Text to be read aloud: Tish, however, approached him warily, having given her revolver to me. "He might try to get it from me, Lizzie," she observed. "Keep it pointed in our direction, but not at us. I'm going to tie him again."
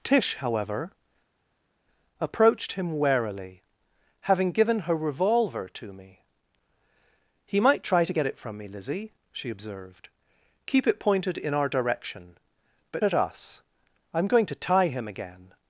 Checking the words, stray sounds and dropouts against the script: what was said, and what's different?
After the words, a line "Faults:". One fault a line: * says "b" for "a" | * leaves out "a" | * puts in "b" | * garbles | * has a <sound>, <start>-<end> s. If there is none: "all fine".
Tish, however, approached him warily, having given her revolver to me. "He might try to get it from me, Lizzie," she observed. "Keep it pointed in our direction, but at us. I'm going to tie him again."
Faults:
* leaves out "not"